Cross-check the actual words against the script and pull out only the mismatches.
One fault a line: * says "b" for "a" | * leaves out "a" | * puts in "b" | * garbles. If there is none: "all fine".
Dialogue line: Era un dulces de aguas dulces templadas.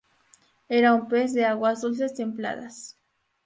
* says "pez" for "dulces"